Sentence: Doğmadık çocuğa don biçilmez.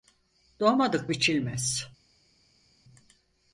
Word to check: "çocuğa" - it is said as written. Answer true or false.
false